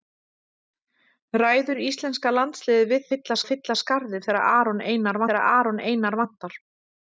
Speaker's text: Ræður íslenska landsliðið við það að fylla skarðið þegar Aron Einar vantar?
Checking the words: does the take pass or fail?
fail